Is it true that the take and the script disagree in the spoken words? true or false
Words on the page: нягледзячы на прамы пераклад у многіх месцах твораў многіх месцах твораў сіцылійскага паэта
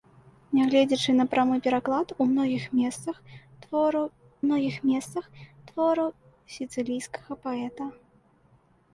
false